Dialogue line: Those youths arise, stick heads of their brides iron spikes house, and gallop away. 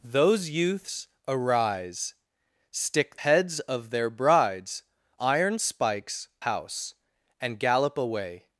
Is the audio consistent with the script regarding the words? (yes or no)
yes